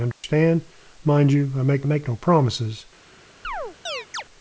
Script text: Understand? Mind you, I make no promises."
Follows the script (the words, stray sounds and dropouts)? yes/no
no